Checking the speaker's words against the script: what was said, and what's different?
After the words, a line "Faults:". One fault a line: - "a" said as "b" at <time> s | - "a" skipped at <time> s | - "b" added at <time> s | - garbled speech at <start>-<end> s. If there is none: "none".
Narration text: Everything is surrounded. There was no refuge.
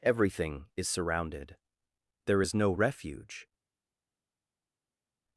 Everything is surrounded. There is no refuge.
Faults:
- "was" said as "is" at 2.4 s